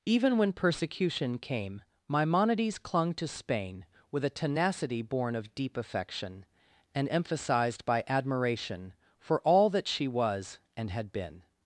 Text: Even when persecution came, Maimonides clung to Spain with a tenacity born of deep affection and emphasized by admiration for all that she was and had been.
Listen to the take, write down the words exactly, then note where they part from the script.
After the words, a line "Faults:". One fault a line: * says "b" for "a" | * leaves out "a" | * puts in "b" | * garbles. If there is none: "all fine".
Even when persecution came, Maimonides clung to Spain with a tenacity born of deep affection and emphasized by admiration for all that she was and had been.
Faults:
all fine